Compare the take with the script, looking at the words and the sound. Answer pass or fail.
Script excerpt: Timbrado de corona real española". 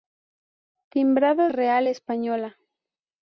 fail